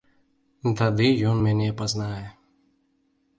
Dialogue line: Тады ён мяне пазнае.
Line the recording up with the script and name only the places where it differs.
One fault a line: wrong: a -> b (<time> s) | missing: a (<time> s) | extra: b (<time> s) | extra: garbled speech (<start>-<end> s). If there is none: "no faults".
no faults